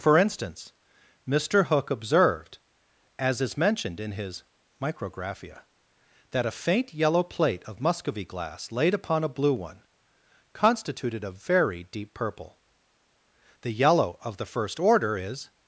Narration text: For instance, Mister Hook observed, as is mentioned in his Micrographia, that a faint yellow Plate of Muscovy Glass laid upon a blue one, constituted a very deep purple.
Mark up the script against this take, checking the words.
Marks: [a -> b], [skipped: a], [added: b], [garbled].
For instance, Mister Hook observed, as is mentioned in his Micrographia, that a faint yellow Plate of Muscovy Glass laid upon a blue one, constituted a very deep purple. [added: The yellow of the first Order is]